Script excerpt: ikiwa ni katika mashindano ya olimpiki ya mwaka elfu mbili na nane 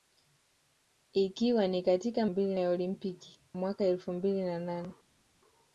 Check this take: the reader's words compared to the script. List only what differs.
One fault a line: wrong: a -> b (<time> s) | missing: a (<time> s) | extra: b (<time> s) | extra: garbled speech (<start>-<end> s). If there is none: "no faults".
wrong: mashindano -> mbili (2.2 s)
missing: ya (3.4 s)